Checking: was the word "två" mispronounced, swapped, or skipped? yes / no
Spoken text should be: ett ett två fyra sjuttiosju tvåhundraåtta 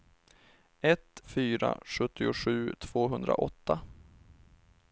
yes